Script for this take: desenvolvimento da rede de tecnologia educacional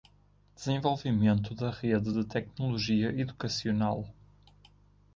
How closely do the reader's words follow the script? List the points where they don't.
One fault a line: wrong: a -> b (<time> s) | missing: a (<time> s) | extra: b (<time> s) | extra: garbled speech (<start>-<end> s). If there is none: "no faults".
no faults